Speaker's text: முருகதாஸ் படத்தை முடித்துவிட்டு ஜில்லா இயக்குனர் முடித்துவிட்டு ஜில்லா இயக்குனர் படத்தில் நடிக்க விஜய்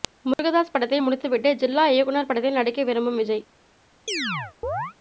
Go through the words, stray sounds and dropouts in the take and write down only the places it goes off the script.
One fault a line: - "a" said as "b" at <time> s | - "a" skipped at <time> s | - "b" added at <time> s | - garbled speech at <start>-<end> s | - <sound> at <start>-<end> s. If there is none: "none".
- dropout at 0.3-0.4 s
- "முடித்துவிட்டு ஜில்லா இயக்குனர்" skipped at 2.3 s
- "விரும்பும்" added at 2.8 s
- chirp at 4.1-4.9 s